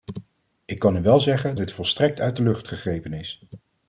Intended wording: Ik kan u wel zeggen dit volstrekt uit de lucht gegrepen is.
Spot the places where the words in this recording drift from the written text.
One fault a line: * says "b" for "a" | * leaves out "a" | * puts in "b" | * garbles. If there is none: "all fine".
all fine